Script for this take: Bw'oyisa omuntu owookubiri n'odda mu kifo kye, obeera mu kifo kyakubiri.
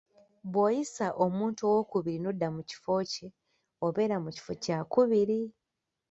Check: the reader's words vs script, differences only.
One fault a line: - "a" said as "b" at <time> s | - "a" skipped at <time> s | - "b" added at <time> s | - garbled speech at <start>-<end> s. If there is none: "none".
none